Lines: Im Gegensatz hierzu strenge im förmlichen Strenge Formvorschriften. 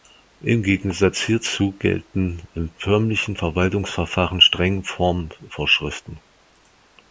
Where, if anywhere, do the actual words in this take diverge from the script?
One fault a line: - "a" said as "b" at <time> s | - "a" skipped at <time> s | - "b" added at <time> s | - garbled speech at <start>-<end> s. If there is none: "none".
- "strenge" said as "gelten" at 1.7 s
- "Verwaltungsverfahren" added at 3.4 s